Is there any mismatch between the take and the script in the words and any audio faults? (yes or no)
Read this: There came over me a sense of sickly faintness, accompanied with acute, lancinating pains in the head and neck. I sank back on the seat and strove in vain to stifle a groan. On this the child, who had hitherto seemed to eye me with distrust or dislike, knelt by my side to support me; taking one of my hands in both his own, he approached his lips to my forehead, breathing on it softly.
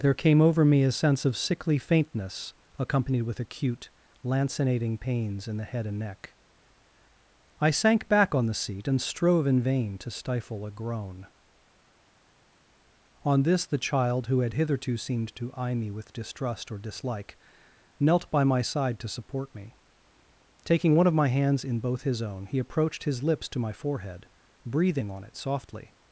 no